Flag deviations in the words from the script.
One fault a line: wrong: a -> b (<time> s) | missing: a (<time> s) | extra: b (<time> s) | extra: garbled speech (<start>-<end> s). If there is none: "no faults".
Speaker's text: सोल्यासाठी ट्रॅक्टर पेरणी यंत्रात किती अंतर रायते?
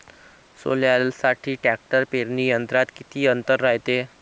no faults